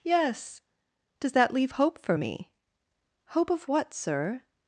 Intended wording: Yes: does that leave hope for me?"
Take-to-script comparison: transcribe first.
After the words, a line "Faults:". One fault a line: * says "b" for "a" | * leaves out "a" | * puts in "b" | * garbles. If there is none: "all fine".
Yes: does that leave hope for me?" "Hope of what, sir
Faults:
* puts in "Hope of what sir"